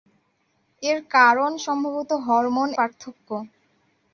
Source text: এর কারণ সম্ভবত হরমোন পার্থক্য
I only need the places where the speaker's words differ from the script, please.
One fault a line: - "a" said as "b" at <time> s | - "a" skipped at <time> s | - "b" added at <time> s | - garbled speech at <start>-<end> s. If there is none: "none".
none